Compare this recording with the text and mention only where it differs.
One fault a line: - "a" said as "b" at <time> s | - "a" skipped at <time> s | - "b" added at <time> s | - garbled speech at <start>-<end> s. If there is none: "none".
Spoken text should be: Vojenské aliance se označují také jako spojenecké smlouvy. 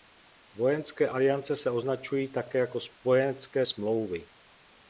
none